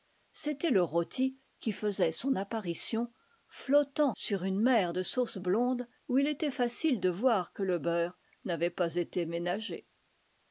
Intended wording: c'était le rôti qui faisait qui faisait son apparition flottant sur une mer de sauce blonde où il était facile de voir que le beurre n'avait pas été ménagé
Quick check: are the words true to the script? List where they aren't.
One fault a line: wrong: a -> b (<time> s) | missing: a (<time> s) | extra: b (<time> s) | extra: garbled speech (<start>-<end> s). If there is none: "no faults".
missing: qui faisait (2.1 s)